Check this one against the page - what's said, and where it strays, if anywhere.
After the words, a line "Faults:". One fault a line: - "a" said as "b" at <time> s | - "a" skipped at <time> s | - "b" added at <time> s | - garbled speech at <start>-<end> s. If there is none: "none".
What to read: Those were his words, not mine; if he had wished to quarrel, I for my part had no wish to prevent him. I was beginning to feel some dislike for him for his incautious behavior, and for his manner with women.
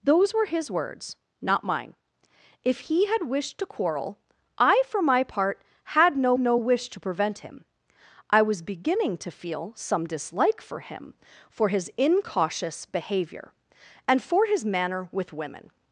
Those were his words, not mine; if he had wished to quarrel, I for my part had no no wish to prevent him. I was beginning to feel some dislike for him for his incautious behavior, and for his manner with women.
Faults:
- "no" added at 6.4 s